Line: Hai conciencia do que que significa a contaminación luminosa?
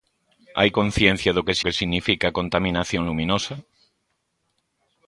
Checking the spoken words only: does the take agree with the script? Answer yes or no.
yes